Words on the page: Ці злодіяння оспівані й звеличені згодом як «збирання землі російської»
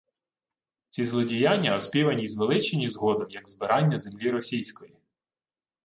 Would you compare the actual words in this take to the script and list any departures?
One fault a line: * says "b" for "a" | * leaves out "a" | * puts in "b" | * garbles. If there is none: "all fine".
all fine